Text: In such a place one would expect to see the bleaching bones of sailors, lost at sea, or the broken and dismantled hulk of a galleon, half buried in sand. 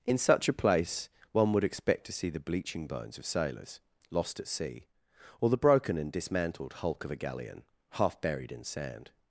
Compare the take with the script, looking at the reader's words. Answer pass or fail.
pass